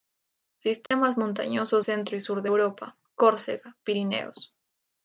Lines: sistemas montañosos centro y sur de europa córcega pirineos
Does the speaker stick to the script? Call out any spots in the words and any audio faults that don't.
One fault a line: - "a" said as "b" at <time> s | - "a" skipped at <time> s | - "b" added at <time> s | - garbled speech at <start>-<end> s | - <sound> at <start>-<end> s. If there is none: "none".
- dropout at 0.9-0.9 s